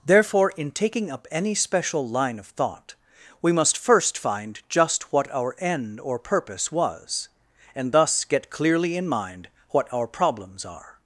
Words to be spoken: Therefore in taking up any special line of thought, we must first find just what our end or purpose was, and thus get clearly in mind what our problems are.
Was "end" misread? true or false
false